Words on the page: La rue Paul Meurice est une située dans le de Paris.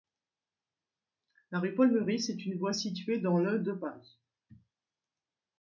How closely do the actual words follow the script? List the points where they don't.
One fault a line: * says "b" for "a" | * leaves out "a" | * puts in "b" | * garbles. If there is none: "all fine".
* puts in "voie"